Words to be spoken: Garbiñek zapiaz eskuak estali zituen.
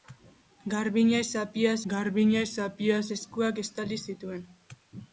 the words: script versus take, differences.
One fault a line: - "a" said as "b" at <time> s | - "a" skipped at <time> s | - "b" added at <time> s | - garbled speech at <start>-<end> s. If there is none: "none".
- "garbiñek zapiaz" added at 1.9 s